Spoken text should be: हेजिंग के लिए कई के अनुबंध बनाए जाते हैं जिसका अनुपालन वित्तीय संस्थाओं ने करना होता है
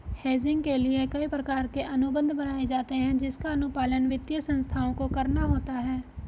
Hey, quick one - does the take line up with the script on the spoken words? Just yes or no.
no